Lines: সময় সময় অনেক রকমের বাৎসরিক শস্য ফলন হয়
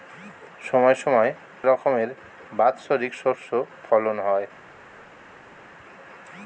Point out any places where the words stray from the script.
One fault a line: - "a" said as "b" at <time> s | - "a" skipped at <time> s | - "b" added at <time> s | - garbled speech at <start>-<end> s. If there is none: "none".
- "অনেক" skipped at 1.3 s